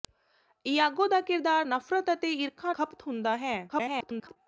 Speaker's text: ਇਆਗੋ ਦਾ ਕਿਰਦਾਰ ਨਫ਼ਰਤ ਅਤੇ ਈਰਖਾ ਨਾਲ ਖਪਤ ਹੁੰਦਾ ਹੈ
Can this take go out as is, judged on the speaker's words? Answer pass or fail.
fail